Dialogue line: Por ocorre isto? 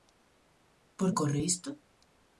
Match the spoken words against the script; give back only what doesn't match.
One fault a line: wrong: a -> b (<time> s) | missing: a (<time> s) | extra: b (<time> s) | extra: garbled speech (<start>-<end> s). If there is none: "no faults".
no faults